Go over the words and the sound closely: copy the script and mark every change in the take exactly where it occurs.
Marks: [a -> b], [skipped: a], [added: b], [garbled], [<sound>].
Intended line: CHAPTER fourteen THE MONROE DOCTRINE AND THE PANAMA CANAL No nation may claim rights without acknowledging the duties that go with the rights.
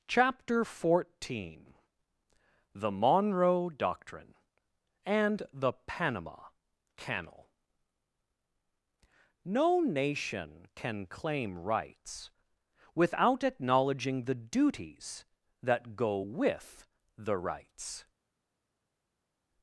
CHAPTER fourteen THE MONROE DOCTRINE AND THE PANAMA CANAL No nation [may -> can] claim rights without acknowledging the duties that go with the rights.